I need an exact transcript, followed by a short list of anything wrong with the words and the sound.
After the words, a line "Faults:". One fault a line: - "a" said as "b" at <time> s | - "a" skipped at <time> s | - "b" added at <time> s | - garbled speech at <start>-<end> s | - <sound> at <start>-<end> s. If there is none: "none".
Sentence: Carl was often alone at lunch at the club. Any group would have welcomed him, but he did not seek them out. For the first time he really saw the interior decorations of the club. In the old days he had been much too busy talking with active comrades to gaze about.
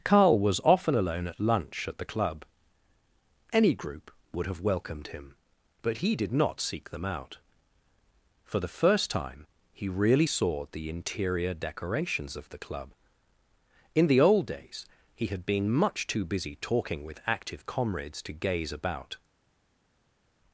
Carl was often alone at lunch at the club. Any group would have welcomed him, but he did not seek them out. For the first time he really saw the interior decorations of the club. In the old days he had been much too busy talking with active comrades to gaze about.
Faults:
none